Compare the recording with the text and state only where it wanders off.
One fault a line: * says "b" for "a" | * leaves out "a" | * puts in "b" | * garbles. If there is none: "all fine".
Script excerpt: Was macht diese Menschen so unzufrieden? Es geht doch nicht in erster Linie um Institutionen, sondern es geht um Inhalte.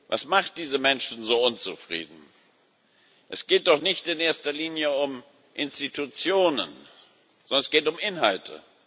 all fine